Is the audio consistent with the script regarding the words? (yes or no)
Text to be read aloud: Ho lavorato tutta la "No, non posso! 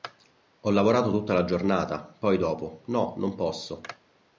no